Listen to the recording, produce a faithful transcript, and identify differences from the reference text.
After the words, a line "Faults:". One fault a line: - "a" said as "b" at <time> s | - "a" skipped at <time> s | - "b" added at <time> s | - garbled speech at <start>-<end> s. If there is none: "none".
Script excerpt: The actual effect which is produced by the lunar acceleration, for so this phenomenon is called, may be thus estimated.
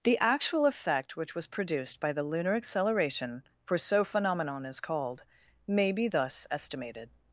The actual effect which was produced by the lunar acceleration, for so phenomenon is called, may be thus estimated.
Faults:
- "is" said as "was" at 1.4 s
- "this" skipped at 4.0 s